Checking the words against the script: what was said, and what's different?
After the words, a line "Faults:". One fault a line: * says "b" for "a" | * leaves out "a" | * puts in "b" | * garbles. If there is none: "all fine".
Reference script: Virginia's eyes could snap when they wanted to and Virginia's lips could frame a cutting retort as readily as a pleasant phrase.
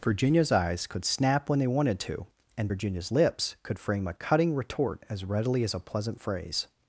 Virginia's eyes could snap when they wanted to and Virginia's lips could frame a cutting retort as readily as a pleasant phrase.
Faults:
all fine